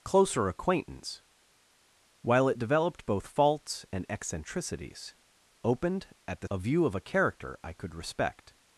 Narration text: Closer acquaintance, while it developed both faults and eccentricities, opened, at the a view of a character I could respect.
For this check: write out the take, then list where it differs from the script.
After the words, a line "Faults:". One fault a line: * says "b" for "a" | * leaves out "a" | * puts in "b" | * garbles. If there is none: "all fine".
Closer acquaintance, while it developed both faults and eccentricities, opened, at the a view of a character I could respect.
Faults:
all fine